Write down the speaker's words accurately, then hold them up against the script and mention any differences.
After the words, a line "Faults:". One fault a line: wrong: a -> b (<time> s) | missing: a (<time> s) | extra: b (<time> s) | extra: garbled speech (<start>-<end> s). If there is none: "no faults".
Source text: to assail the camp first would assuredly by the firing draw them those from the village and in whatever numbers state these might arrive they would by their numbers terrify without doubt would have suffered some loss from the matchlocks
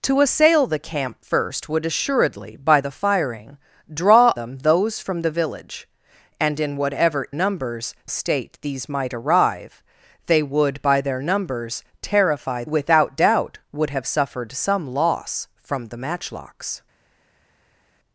to assail the camp first would assuredly by the firing draw them those from the village and in whatever numbers state these might arrive they would by their numbers terrify without doubt would have suffered some loss from the matchlocks
Faults:
no faults